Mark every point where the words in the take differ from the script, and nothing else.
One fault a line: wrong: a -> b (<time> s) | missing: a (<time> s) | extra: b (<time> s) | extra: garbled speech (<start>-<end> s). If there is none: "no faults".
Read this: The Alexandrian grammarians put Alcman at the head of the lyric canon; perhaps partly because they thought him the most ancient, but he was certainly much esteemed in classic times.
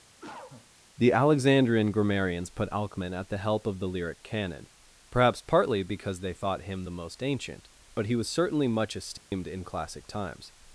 wrong: head -> help (3.4 s)